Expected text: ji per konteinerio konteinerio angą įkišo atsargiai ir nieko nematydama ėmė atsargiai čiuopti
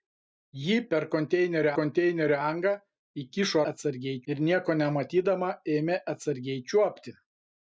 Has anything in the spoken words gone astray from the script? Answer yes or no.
no